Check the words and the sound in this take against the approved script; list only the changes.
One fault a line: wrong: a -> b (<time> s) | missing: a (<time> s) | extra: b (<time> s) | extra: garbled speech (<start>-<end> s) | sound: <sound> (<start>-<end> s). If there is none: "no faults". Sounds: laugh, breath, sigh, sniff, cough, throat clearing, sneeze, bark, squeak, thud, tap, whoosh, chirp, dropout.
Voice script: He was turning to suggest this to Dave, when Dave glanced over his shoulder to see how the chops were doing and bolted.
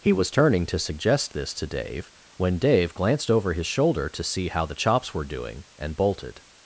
no faults